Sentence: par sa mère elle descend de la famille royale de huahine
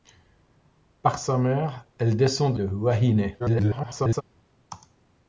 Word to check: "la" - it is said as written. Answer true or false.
false